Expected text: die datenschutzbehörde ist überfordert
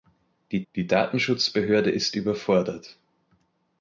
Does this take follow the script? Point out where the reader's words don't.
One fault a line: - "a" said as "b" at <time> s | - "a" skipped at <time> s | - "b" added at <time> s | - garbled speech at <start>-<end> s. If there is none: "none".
- "die" added at 0.7 s